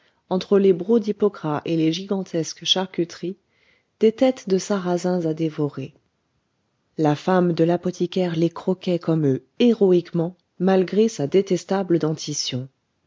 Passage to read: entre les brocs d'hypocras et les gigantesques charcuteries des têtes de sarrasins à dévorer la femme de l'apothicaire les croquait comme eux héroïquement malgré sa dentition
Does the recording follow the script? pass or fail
fail